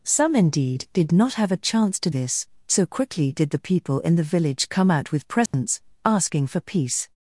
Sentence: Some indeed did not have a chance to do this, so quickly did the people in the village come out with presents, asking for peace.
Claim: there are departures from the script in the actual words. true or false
true